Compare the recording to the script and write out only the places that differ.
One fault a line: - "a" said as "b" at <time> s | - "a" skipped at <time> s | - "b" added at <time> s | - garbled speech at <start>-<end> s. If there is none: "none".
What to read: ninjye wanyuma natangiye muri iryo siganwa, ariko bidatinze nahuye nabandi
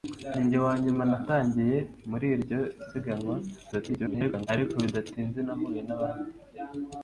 - garbled speech at 3.7-4.5 s